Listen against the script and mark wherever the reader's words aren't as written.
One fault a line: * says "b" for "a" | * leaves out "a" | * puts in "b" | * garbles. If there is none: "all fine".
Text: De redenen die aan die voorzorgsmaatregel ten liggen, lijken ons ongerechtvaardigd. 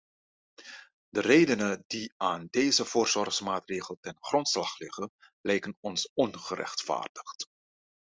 * says "deze" for "die"
* puts in "grondslag"